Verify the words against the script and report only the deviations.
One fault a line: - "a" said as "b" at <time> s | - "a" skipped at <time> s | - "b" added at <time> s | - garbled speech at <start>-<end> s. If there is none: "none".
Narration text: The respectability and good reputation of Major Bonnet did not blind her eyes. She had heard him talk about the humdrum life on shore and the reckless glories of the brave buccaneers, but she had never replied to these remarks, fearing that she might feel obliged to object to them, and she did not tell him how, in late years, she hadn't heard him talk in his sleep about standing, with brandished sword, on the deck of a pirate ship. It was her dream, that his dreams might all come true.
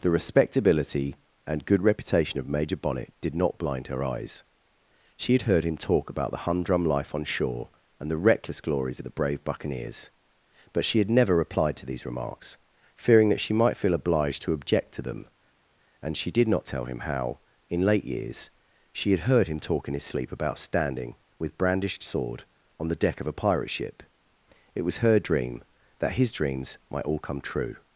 - "hadn't" said as "had" at 19.1 s